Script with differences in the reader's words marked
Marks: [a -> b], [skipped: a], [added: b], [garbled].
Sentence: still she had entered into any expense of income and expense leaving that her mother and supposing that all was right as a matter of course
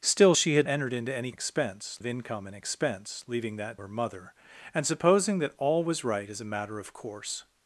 still she had entered into any expense of income and expense leaving that her mother and supposing that all was right as a matter of course